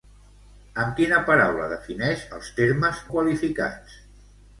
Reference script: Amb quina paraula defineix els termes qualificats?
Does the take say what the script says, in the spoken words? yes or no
yes